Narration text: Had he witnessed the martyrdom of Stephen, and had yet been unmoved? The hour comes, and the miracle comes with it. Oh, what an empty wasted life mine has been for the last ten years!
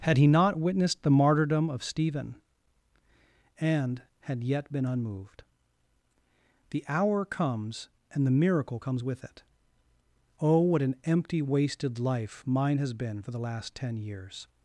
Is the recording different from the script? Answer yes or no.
yes